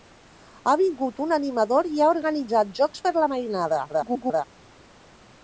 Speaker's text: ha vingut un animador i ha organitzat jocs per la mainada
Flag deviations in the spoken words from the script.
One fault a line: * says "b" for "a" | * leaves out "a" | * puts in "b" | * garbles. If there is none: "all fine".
* garbles